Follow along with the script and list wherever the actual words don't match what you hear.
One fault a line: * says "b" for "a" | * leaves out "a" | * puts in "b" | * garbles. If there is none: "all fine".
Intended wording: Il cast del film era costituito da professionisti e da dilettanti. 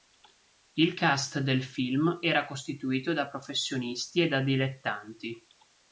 all fine